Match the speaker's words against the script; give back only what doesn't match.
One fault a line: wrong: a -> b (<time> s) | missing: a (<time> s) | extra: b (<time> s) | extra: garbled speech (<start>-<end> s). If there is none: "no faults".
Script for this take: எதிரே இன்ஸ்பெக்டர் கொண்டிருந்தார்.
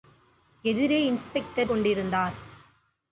no faults